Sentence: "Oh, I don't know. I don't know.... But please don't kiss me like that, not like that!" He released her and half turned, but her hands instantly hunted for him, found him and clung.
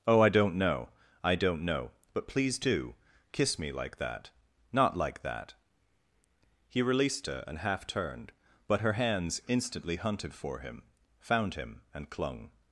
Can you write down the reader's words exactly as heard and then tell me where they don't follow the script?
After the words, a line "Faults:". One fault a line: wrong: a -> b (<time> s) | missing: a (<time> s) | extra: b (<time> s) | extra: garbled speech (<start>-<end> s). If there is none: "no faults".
"Oh, I don't know. I don't know.... But please do kiss me like that, not like that!" He released her and half turned, but her hands instantly hunted for him, found him and clung.
Faults:
wrong: don't -> do (2.6 s)